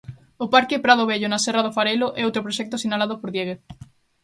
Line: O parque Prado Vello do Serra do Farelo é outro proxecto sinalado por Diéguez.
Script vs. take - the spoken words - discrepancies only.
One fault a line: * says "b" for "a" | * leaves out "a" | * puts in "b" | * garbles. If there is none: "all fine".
* says "na" for "do"